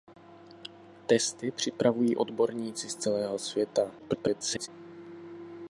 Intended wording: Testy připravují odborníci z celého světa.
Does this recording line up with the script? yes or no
no